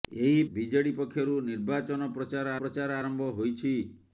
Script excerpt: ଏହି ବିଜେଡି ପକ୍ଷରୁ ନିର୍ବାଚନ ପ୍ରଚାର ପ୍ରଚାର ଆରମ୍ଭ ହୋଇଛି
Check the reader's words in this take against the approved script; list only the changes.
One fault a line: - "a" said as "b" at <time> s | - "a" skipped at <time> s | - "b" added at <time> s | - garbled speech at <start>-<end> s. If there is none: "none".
none